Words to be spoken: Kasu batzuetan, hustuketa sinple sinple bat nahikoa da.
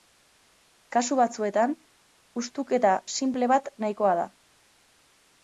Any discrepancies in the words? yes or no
yes